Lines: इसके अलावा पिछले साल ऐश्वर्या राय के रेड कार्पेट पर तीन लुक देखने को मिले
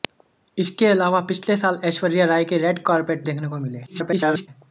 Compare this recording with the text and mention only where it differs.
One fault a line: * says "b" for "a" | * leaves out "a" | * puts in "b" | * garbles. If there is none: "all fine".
* leaves out "पर तीन लुक"
* garbles